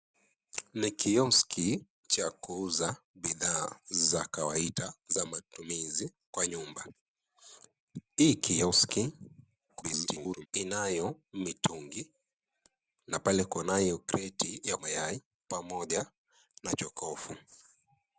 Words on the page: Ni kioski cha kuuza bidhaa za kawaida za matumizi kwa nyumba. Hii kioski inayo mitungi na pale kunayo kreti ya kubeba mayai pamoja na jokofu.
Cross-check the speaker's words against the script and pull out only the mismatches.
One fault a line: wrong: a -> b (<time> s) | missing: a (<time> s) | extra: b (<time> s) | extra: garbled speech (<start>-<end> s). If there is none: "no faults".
extra: garbled speech (9.7-10.5 s)
missing: kubeba (14.8 s)